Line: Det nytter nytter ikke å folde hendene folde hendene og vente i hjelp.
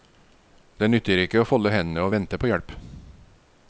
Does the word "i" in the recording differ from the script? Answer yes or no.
yes